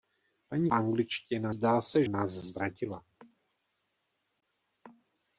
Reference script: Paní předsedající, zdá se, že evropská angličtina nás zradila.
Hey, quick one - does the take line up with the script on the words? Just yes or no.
no